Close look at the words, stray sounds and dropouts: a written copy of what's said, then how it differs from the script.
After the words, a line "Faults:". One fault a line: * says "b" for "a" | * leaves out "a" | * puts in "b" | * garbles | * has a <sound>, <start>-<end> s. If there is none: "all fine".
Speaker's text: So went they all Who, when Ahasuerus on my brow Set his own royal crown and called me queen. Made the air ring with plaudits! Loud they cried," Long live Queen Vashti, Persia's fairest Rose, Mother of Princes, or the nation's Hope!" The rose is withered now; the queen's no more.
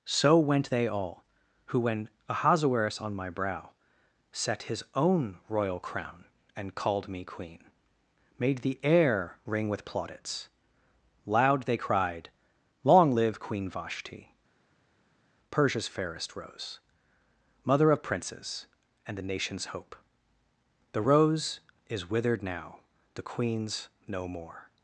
So went they all Who, when Ahasuerus on my brow Set his own royal crown and called me queen. Made the air ring with plaudits! Loud they cried," Long live Queen Vashti, Persia's fairest Rose, Mother of Princes, and the nation's Hope!" The rose is withered now; the queen's no more.
Faults:
* says "and" for "or"